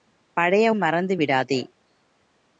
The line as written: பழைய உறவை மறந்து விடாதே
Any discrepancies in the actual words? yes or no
yes